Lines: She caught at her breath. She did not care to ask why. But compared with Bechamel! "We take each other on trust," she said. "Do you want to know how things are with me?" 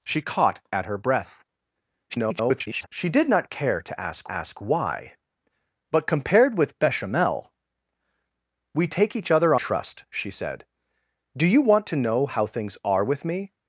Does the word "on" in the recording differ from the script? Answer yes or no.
yes